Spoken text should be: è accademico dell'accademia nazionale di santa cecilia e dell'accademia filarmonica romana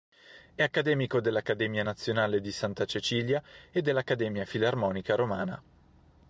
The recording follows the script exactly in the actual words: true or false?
true